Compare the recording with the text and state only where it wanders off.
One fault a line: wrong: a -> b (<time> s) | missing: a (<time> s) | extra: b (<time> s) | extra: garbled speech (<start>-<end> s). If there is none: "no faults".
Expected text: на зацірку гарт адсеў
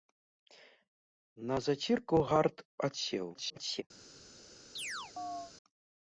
extra: garbled speech (3.3-3.8 s)